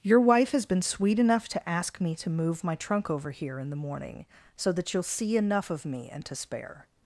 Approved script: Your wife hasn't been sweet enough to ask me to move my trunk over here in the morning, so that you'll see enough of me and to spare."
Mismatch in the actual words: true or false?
true